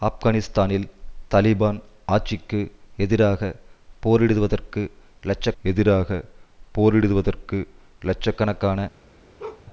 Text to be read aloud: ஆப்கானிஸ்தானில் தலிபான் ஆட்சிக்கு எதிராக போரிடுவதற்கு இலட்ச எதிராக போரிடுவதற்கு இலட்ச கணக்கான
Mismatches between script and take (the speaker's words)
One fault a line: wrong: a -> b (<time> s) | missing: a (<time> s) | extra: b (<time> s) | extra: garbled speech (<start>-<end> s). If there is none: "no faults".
no faults